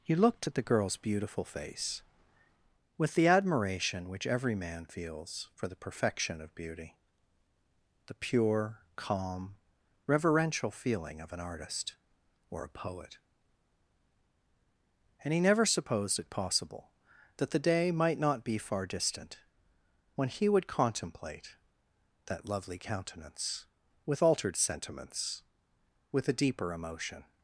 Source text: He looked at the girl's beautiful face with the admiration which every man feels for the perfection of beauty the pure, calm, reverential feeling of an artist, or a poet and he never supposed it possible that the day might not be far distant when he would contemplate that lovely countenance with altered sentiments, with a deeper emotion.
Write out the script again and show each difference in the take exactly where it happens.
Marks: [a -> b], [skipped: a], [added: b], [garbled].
He looked at the girl's beautiful face with the admiration which every man feels for the perfection of beauty the pure, calm, reverential feeling of an artist, or a poet and he never supposed it possible that the day might not be far distant when he would contemplate that lovely countenance with altered sentiments, with a deeper emotion.